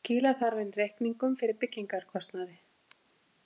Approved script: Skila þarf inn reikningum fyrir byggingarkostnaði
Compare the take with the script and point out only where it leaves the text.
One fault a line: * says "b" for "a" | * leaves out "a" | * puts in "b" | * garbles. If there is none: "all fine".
all fine